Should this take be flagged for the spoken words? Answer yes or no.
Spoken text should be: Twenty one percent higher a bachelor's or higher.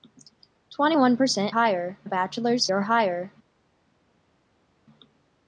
no